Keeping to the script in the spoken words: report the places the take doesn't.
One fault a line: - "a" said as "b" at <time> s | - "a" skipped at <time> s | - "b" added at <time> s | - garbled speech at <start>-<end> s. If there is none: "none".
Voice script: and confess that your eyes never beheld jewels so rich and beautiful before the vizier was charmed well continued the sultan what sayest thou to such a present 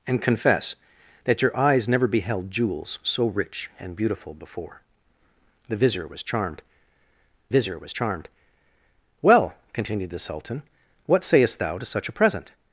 - "vizier was charmed" added at 7.5 s